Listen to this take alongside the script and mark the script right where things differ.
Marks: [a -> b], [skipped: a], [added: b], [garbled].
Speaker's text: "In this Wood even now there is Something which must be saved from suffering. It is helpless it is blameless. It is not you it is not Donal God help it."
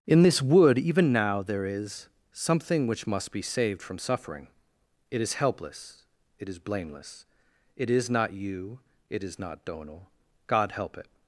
"In this Wood even now there is Something which must be saved from suffering. It is helpless it is blameless. It is not you it is not Donal God help it."